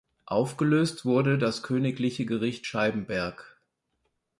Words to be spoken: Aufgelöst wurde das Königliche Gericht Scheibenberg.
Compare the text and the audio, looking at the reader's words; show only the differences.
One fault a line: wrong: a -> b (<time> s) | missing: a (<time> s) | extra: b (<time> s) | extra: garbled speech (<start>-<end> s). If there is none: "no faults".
no faults